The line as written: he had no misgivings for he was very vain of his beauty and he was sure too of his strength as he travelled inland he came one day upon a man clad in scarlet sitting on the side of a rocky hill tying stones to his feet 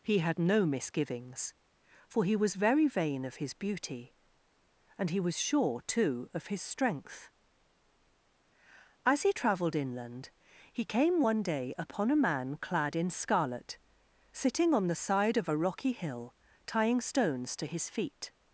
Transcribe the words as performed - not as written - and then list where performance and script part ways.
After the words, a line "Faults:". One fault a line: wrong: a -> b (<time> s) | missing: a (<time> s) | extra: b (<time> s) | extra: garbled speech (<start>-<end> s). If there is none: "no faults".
he had no misgivings for he was very vain of his beauty and he was sure too of his strength as he travelled inland he came one day upon a man clad in scarlet sitting on the side of a rocky hill tying stones to his feet
Faults:
no faults